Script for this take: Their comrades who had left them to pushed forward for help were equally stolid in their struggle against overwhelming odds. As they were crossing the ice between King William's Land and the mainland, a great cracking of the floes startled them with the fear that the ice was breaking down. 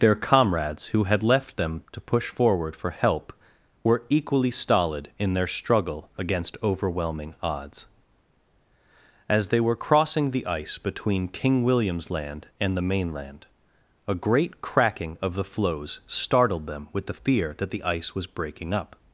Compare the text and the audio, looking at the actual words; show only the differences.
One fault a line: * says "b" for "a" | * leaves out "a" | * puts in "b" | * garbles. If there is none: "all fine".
* says "push" for "pushed"
* says "up" for "down"